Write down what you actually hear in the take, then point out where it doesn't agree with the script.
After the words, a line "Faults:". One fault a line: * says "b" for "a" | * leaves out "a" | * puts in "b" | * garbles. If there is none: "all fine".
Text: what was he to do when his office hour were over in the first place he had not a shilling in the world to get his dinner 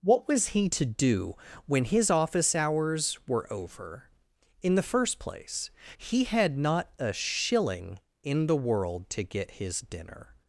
what was he to do when his office hours were over in the first place he had not a shilling in the world to get his dinner
Faults:
* says "hours" for "hour"